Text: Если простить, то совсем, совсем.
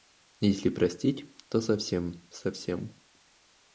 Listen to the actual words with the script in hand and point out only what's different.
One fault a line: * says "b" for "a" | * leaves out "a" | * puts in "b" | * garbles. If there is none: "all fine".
all fine